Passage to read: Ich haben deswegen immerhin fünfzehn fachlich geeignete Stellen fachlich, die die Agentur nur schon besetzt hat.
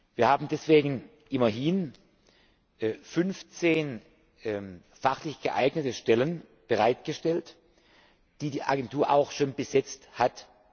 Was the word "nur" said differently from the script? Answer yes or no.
yes